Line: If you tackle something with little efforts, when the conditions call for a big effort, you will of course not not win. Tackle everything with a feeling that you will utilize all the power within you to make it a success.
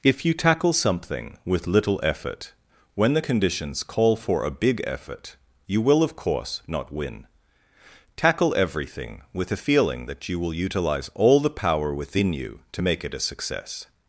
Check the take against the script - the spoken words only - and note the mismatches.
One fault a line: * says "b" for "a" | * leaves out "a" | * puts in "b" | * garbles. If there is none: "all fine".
* says "effort" for "efforts"
* leaves out "not"